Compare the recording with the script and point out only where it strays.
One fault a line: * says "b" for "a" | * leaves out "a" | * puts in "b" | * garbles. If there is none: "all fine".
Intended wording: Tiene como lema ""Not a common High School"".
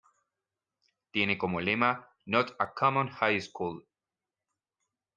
all fine